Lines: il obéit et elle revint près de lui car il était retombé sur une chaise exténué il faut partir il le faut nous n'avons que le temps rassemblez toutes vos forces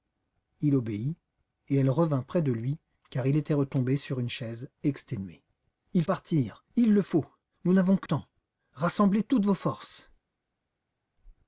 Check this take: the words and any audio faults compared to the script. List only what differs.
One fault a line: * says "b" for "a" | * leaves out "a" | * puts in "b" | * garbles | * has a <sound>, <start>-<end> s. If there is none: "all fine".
* leaves out "faut"
* leaves out "le"